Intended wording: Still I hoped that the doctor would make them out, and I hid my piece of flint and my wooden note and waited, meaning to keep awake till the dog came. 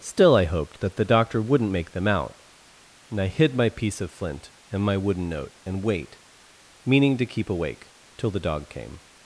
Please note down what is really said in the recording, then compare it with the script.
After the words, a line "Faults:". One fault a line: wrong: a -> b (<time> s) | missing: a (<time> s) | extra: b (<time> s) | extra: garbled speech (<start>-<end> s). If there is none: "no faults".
Still I hoped that the doctor wouldn't make them out, and I hid my piece of flint and my wooden note and wait, meaning to keep awake till the dog came.
Faults:
wrong: would -> wouldn't (1.4 s)
wrong: waited -> wait (5.8 s)